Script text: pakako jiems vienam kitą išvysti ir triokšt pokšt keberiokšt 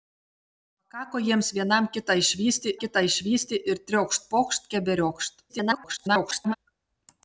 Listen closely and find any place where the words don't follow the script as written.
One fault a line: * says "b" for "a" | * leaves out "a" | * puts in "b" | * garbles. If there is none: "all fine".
* puts in "kitą išvysti"
* garbles